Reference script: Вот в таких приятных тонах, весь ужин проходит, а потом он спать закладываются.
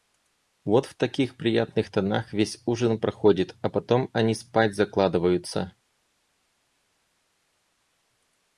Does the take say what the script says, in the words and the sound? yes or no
no